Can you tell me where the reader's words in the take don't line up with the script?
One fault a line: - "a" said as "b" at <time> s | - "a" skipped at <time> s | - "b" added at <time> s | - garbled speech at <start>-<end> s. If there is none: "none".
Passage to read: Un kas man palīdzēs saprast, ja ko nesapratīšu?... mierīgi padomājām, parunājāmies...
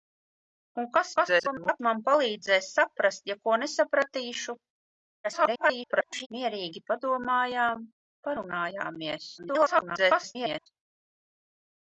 - garbled speech at 1.2-1.8 s
- garbled speech at 5.2-6.3 s
- garbled speech at 9.4-10.7 s